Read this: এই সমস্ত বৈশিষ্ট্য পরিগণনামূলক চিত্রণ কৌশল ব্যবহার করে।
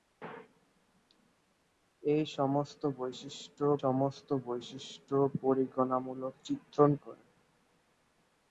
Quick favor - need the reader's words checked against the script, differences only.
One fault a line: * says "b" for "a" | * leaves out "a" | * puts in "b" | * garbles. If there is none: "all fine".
* puts in "সমস্ত বৈশিষ্ট্য"
* leaves out "কৌশল ব্যবহার"